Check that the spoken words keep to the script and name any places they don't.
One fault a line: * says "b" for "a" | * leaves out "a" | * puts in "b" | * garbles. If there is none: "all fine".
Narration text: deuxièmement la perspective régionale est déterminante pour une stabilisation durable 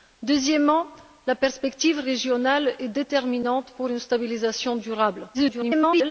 * garbles